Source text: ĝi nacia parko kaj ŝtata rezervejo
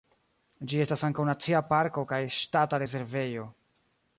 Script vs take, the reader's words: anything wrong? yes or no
yes